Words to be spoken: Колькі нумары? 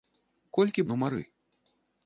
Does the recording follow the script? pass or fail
pass